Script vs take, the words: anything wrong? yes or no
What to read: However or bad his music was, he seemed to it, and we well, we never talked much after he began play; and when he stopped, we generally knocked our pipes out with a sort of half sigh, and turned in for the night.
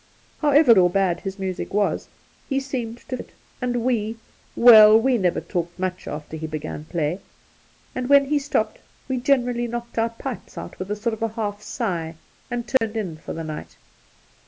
no